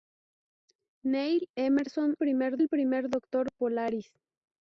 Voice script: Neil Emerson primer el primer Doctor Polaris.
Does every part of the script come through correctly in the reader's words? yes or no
yes